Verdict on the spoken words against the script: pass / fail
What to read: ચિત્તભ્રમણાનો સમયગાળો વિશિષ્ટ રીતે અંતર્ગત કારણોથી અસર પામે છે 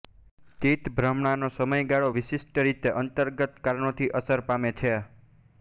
pass